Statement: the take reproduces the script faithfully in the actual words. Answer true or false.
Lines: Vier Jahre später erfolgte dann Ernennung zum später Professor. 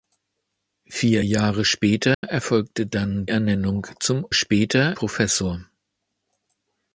true